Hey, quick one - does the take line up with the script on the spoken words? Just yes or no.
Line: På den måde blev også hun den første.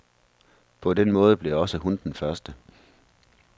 yes